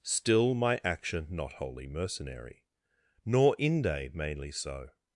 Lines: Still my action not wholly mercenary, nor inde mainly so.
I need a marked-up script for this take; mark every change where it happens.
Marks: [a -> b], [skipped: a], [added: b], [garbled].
Still my action not wholly mercenary, nor inde mainly so.